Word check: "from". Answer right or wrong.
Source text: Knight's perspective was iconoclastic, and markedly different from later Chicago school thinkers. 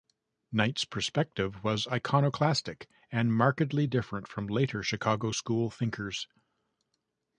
right